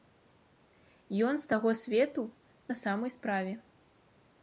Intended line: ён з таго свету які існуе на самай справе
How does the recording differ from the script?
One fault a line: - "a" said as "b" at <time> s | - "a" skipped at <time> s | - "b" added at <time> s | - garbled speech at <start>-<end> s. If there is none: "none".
- "які існуе" skipped at 2.2 s